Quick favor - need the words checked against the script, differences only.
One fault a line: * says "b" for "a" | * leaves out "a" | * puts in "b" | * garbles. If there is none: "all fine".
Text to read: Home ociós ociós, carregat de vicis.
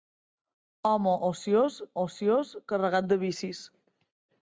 all fine